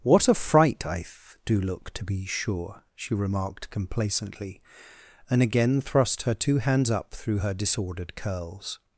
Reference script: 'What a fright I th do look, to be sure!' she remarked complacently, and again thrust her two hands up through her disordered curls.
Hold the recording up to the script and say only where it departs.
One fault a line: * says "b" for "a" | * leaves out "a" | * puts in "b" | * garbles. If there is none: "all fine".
all fine